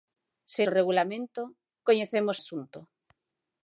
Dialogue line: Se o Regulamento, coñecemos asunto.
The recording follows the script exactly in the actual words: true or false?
true